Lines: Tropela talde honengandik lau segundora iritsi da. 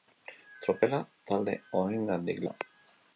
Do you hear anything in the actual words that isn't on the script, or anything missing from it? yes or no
yes